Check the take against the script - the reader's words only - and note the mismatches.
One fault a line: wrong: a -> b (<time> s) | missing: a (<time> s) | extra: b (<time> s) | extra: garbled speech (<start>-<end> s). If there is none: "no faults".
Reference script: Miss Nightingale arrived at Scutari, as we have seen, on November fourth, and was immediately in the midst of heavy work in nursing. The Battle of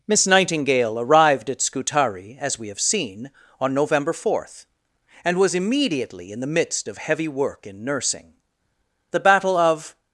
no faults